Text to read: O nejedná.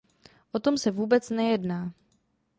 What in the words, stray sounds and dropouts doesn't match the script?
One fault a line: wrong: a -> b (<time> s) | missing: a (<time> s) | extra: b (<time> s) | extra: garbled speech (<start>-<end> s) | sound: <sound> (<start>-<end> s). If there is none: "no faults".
extra: tom se vůbec (0.6 s)